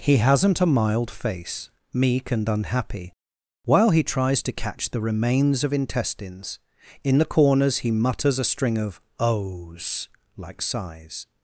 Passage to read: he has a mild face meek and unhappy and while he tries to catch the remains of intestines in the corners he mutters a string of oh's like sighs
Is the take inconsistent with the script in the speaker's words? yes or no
yes